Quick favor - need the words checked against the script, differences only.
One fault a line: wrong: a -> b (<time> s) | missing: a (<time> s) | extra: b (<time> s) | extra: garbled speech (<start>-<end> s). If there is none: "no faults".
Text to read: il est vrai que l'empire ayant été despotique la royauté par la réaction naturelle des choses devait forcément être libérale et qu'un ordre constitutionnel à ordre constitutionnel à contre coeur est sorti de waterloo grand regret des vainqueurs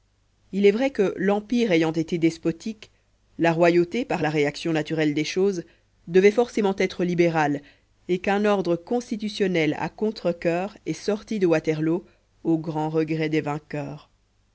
missing: ordre constitutionnel à (9.9 s)
extra: au (12.4 s)